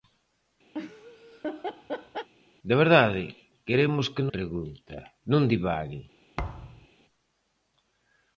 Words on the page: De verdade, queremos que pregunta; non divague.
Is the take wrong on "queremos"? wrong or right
right